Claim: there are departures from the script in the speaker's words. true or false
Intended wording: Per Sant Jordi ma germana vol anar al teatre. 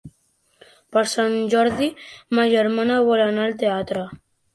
false